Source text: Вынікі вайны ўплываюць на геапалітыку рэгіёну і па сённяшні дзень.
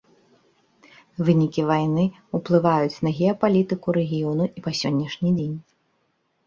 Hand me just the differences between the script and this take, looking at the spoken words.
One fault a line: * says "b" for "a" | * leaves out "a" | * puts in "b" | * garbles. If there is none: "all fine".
all fine